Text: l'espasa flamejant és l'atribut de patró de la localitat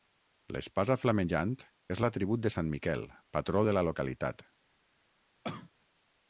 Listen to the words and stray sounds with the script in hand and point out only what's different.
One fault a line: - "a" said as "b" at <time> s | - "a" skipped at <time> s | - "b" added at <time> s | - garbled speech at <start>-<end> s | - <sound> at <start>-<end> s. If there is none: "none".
- "sant miquel" added at 2.6 s
- cough at 5.4-5.7 s